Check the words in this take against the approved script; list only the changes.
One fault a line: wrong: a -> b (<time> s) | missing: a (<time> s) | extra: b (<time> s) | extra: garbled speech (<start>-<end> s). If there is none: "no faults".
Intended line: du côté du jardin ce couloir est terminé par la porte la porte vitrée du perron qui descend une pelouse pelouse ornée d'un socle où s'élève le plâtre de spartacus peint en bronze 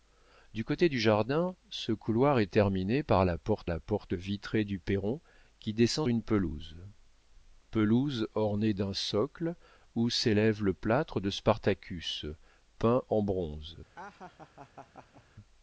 no faults